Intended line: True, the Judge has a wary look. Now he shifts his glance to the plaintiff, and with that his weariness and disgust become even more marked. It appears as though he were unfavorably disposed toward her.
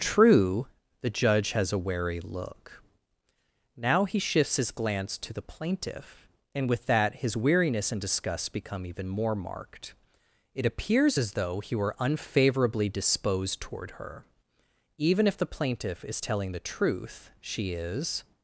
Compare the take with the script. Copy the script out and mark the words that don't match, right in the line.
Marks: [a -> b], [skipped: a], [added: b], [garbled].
True, the Judge has a wary look. Now he shifts his glance to the plaintiff, and with that his weariness and disgust become even more marked. It appears as though he were unfavorably disposed toward her. [added: Even if the plaintiff is telling the truth she is]